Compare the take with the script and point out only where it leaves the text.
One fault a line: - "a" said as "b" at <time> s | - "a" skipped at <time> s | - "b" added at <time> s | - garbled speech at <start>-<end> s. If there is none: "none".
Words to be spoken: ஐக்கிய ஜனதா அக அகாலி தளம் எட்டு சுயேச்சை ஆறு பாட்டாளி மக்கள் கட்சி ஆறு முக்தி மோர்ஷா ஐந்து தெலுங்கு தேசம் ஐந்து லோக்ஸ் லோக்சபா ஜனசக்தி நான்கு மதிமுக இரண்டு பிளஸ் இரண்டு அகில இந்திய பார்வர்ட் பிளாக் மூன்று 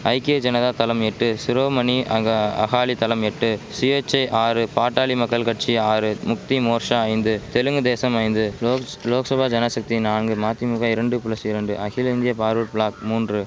- "தளம் எட்டு சிரோமணி" added at 0.7 s